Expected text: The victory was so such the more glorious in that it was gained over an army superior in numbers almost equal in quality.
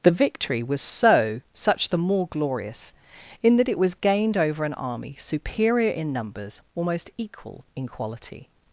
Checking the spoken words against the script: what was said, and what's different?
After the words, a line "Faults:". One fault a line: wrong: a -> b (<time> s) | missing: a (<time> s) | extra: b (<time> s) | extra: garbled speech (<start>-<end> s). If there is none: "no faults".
The victory was so such the more glorious in that it was gained over an army superior in numbers almost equal in quality.
Faults:
no faults